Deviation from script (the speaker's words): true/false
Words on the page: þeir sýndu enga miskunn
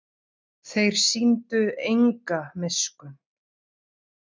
false